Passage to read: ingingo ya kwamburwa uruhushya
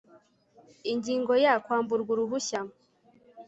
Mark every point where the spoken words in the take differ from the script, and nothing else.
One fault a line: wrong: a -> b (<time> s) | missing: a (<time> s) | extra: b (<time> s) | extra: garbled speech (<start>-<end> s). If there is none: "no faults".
no faults